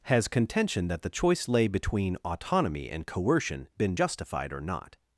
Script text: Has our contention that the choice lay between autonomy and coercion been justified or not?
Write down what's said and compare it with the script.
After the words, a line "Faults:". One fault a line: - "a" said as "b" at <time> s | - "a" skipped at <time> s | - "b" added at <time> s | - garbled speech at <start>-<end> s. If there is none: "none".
Has contention that the choice lay between autonomy and coercion been justified or not?
Faults:
- "our" skipped at 0.3 s